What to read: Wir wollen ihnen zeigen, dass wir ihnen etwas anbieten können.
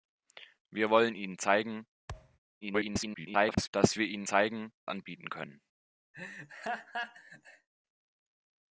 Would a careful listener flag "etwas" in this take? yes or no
yes